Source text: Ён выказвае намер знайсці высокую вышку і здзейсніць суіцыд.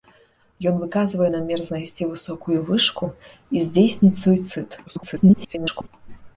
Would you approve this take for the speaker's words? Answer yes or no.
no